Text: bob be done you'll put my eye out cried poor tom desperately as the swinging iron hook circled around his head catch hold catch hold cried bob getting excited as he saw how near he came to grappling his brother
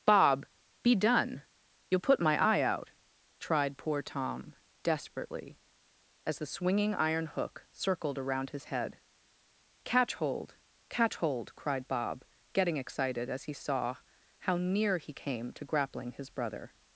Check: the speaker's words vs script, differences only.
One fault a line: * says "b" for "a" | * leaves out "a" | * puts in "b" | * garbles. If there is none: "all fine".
* says "tried" for "cried"